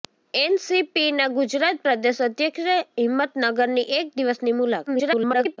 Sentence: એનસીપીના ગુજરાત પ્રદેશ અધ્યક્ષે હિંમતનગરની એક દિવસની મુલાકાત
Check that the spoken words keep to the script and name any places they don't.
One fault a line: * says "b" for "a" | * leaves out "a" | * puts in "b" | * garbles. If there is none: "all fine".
* garbles